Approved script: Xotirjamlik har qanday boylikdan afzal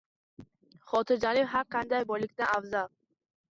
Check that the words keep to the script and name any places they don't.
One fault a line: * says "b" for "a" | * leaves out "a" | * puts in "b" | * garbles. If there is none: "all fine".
all fine